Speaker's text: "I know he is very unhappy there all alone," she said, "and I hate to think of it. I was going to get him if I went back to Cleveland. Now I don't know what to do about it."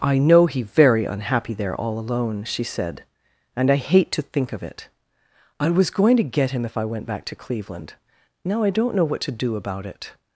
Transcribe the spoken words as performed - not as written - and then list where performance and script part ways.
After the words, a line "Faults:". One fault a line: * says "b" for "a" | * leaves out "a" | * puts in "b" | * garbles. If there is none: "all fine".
"I know he very unhappy there all alone," she said, "and I hate to think of it. I was going to get him if I went back to Cleveland. Now I don't know what to do about it."
Faults:
* leaves out "is"